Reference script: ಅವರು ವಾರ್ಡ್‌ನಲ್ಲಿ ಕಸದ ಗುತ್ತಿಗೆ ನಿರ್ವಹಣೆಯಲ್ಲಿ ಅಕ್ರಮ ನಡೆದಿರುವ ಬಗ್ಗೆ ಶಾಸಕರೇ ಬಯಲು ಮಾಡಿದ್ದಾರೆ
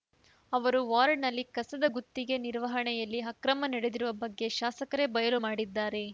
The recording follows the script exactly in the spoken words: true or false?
true